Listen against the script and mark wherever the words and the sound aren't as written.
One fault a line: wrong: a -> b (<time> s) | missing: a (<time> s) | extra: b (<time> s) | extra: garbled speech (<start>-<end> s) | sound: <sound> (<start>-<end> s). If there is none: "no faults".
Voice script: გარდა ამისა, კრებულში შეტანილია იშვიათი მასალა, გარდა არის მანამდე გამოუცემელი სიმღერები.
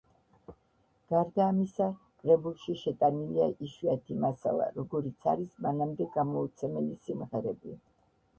wrong: გარდა -> როგორიც (4.8 s)